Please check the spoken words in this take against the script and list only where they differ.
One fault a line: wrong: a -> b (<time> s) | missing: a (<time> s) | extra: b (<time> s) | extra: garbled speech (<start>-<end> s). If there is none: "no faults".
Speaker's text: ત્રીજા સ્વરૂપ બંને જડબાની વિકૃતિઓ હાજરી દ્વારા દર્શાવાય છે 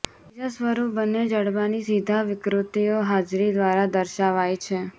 extra: સીધા (1.8 s)